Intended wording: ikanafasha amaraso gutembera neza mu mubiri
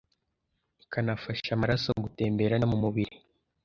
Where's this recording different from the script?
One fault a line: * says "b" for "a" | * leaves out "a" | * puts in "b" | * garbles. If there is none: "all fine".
* leaves out "neza"